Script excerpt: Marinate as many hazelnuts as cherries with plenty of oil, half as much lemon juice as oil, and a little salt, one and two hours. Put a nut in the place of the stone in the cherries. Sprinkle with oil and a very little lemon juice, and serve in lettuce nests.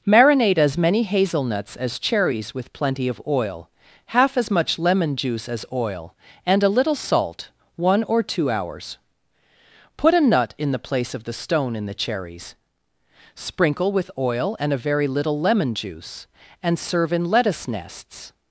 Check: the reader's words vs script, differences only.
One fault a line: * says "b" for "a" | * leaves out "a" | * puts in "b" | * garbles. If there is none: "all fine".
* says "or" for "and"